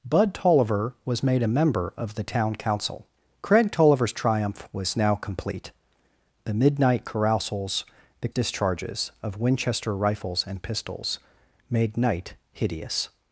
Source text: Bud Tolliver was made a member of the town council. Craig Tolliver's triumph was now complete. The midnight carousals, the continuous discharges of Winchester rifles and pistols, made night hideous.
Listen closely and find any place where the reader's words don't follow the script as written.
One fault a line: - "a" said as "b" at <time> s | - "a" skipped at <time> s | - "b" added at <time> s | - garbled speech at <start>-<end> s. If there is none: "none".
- "continuous" skipped at 8.3 s